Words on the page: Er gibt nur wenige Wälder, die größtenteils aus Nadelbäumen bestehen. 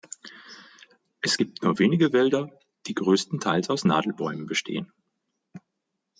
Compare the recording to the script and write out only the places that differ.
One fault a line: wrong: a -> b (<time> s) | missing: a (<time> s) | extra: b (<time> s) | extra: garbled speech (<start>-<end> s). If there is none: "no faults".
wrong: Er -> Es (1.2 s)